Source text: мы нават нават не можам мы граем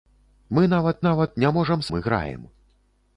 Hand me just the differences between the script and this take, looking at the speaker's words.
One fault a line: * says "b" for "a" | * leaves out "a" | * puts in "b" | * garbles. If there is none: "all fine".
all fine